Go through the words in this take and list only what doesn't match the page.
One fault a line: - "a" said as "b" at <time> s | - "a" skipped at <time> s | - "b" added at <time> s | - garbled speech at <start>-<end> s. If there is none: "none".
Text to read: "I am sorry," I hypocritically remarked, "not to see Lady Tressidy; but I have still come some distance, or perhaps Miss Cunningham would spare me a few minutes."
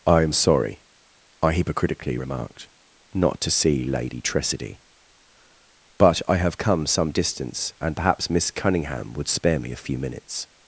- "still" skipped at 6.6 s
- "or" said as "and" at 7.8 s